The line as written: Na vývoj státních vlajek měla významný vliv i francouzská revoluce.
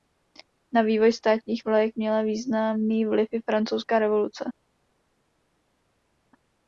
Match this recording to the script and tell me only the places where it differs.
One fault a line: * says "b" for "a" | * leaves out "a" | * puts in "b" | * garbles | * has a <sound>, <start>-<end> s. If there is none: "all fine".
all fine